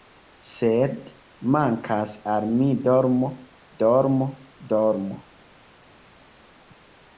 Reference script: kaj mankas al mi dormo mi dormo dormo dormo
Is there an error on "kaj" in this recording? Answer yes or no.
yes